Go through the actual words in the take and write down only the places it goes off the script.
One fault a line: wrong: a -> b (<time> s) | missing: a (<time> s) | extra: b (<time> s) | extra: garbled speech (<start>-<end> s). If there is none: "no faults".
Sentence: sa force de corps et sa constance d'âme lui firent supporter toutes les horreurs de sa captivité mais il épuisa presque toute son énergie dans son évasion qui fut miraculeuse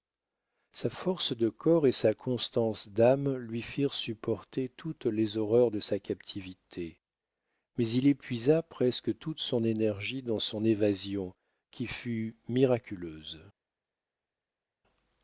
no faults